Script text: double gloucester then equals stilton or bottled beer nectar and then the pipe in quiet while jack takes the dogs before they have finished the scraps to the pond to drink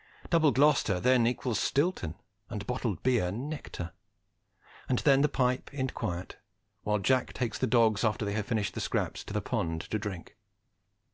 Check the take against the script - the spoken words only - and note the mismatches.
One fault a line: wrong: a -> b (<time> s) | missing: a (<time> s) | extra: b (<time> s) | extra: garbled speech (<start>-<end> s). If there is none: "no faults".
wrong: or -> and (2.5 s)
wrong: before -> after (8.0 s)